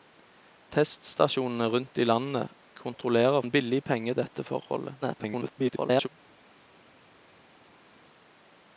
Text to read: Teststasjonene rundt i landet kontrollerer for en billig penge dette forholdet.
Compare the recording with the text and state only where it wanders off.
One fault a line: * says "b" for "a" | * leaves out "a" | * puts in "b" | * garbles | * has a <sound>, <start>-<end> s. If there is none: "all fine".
* leaves out "for"
* garbles